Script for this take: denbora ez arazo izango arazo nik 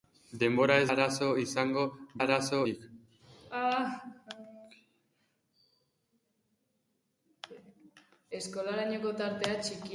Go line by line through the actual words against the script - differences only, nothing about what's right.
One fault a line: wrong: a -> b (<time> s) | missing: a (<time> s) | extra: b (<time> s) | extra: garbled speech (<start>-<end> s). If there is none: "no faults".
no faults